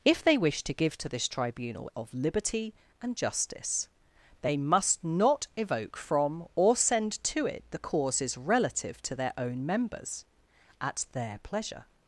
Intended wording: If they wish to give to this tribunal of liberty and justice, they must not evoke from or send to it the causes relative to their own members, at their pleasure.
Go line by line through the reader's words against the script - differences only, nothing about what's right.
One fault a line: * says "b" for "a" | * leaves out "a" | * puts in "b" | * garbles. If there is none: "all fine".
all fine